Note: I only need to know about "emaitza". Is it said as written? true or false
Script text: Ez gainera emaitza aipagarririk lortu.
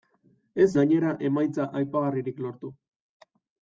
true